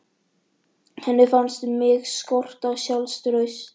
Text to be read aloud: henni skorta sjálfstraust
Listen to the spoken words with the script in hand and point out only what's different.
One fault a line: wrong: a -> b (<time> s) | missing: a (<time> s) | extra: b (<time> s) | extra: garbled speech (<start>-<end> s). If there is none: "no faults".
extra: fannst mig (1.3 s)